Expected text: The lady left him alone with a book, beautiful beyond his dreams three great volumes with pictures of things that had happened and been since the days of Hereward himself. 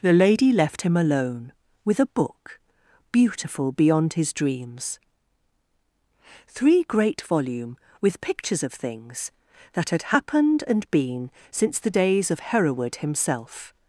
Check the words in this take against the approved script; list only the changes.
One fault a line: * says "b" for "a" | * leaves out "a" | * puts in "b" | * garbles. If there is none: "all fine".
* says "volume" for "volumes"